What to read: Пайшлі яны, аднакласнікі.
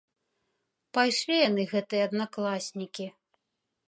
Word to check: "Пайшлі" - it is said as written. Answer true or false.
true